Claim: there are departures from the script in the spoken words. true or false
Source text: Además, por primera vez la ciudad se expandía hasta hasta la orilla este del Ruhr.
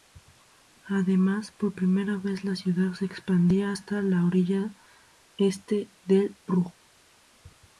true